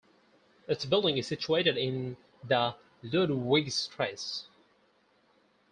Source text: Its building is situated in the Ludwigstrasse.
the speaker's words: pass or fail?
pass